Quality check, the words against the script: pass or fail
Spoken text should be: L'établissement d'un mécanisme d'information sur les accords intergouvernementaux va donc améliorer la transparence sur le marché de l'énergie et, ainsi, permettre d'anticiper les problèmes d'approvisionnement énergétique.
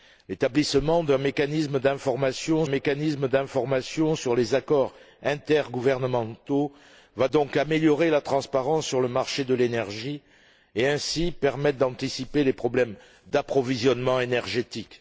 fail